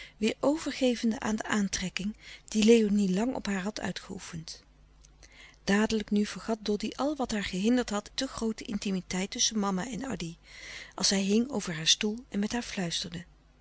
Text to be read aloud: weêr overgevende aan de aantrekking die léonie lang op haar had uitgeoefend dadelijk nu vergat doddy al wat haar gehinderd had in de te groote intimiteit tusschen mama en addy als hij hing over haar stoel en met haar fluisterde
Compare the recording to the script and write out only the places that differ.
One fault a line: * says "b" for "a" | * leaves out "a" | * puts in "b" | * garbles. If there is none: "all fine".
* leaves out "in de"